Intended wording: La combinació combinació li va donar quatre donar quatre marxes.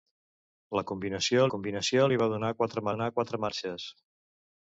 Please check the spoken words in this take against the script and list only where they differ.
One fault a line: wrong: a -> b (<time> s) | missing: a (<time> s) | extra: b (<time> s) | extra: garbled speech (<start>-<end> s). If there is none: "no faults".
no faults